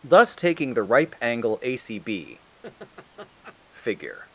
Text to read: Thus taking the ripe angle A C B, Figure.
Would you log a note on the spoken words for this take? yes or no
no